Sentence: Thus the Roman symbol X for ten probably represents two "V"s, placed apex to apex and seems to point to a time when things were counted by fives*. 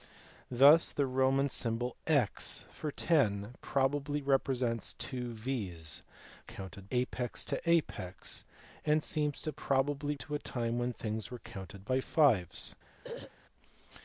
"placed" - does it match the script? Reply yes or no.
no